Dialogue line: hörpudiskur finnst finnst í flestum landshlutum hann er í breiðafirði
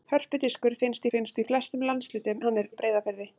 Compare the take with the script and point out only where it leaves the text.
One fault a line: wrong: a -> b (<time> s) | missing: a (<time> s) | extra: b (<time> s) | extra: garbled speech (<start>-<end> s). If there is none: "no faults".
no faults